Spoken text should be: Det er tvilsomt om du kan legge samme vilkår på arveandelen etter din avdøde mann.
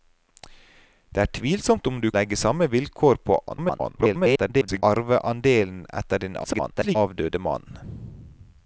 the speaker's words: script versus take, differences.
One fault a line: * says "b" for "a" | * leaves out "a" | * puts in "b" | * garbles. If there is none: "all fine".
* leaves out "kan"
* garbles
* garbles